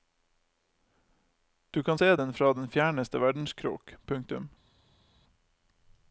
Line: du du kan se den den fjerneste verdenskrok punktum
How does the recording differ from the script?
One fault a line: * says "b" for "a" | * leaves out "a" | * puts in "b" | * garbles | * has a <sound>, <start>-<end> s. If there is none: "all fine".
* leaves out "du"
* puts in "fra"